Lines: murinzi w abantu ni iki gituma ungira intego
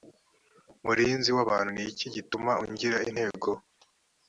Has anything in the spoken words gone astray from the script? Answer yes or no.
no